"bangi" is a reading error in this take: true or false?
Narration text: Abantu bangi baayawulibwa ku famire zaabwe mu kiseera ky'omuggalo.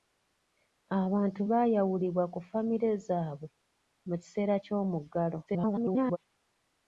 true